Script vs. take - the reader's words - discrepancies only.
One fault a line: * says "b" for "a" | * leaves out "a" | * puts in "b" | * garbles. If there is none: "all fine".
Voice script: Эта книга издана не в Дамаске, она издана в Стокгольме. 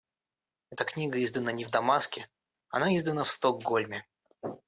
all fine